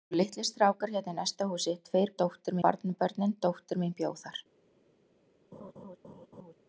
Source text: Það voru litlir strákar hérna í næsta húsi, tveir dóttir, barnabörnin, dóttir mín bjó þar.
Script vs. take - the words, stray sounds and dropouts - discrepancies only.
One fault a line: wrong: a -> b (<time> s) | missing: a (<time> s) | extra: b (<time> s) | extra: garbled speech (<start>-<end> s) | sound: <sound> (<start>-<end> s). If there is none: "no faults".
sound: laugh (5.5-6.5 s)